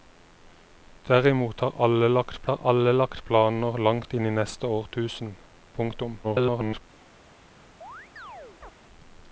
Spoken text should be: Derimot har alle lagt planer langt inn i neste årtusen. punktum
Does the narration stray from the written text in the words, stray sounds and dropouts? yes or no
yes